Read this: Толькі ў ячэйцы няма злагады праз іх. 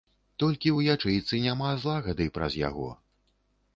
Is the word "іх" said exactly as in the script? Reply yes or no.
no